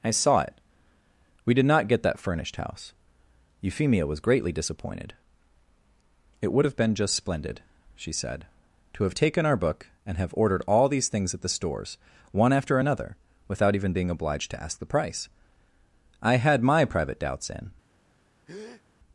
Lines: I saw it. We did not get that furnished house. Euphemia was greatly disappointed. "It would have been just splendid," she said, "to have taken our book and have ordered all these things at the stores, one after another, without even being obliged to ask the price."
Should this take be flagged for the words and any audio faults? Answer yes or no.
yes